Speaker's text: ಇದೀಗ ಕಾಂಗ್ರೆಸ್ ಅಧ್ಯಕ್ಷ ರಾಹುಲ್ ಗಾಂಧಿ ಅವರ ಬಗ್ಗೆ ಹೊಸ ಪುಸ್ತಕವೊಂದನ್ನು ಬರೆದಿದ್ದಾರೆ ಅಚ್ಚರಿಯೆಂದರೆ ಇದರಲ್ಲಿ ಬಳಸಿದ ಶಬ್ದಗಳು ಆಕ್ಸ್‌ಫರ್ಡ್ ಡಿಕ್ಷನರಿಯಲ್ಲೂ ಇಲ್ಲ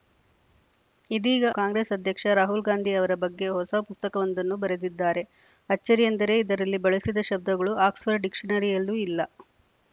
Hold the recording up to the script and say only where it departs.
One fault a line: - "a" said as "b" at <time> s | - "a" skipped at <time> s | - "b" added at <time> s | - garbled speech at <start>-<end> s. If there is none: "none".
none